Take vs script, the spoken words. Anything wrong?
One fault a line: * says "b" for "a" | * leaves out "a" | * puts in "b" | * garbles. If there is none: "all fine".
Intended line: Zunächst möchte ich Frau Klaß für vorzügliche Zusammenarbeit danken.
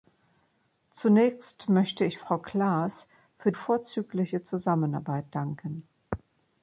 all fine